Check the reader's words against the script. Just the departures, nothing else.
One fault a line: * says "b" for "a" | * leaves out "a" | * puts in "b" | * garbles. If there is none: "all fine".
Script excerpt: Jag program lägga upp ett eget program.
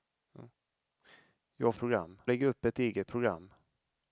all fine